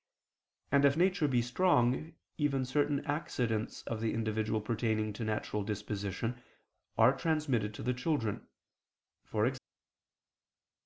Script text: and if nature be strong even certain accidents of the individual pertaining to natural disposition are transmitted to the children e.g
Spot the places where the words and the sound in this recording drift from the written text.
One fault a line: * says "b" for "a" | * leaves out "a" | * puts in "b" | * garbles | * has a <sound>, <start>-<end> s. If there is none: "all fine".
all fine